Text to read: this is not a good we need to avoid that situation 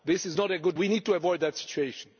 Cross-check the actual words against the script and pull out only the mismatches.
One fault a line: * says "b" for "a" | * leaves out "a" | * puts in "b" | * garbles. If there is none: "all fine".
all fine